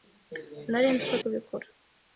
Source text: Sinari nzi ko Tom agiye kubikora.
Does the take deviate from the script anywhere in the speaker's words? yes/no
yes